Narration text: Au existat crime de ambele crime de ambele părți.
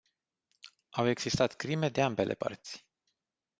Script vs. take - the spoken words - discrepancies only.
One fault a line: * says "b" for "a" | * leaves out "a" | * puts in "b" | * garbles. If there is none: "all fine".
* leaves out "crime de ambele"